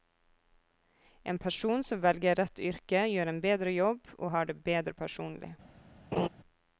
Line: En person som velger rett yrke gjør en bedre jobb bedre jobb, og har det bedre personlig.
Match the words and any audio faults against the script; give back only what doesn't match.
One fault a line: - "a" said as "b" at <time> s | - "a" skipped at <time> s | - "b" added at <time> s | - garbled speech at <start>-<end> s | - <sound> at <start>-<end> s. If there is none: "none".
- "bedre jobb" skipped at 4.1 s
- laugh at 6.1-6.3 s